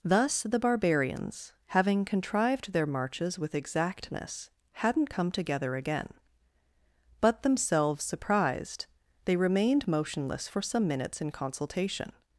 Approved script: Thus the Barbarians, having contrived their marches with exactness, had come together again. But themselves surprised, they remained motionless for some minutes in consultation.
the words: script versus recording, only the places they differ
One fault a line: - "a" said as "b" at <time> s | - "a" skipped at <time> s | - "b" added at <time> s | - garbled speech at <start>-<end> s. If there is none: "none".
- "had" said as "hadn't" at 4.7 s